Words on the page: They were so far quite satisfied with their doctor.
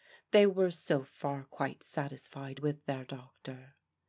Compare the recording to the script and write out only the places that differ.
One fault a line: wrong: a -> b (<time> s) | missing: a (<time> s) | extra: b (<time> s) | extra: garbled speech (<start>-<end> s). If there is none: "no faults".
no faults